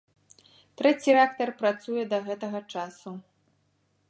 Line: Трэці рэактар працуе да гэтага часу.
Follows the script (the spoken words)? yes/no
yes